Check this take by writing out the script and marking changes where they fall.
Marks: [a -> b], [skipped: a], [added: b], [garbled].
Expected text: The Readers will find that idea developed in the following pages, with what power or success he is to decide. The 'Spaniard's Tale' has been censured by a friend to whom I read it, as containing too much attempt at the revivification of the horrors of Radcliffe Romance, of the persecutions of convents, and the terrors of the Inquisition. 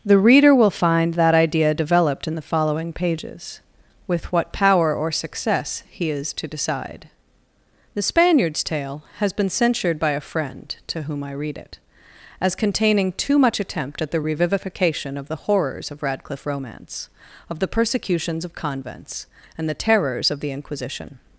The [Readers -> Reader] will find that idea developed in the following pages, with what power or success he is to decide. The 'Spaniard's Tale' has been censured by a friend to whom I read it, as containing too much attempt at the revivification of the horrors of Radcliffe Romance, of the persecutions of convents, and the terrors of the Inquisition.